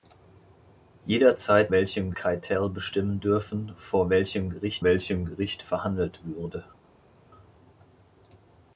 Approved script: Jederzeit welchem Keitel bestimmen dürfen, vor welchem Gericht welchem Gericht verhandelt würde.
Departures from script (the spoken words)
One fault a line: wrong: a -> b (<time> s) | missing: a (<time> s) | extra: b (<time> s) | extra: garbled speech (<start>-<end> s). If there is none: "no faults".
no faults